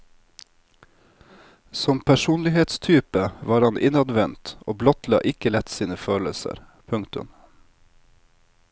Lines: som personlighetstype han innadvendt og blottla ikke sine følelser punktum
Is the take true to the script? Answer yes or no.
no